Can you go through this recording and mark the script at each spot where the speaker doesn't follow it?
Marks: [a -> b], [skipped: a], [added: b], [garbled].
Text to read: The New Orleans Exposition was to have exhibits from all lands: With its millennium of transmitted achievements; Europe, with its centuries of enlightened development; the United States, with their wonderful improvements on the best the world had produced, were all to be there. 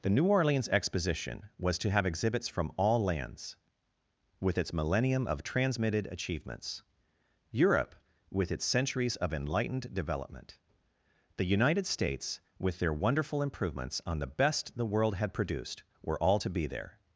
The New Orleans Exposition was to have exhibits from all lands: With its millennium of transmitted achievements; Europe, with its centuries of enlightened development; the United States, with their wonderful improvements on the best the world had produced, were all to be there.